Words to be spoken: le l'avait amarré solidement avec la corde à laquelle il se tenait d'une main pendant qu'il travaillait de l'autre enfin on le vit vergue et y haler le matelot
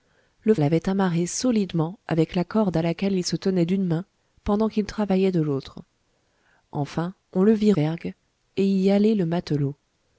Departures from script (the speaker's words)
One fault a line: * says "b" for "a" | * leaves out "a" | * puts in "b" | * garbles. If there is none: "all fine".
all fine